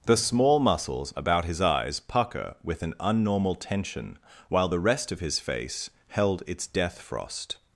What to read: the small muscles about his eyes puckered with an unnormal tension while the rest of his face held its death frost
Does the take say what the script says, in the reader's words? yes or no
no